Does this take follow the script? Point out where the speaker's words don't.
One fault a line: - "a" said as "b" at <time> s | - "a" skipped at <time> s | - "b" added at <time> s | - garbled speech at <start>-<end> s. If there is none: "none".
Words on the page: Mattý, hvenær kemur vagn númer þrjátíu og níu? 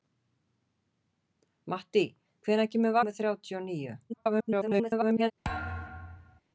- "vagn" skipped at 3.0 s
- garbled speech at 4.1-5.3 s